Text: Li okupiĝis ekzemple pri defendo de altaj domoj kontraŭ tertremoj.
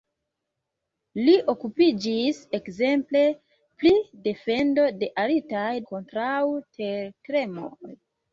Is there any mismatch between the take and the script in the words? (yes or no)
yes